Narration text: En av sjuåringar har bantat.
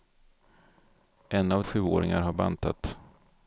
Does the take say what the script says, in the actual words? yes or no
yes